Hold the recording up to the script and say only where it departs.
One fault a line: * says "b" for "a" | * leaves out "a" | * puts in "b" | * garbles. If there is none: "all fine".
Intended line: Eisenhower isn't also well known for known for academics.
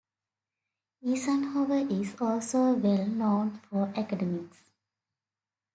* says "is" for "isn't"
* leaves out "known for"